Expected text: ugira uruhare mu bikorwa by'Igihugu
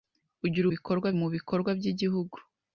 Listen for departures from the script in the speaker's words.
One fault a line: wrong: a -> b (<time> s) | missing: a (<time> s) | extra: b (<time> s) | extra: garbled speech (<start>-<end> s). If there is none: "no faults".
wrong: uruhare -> bikorwa (0.7 s)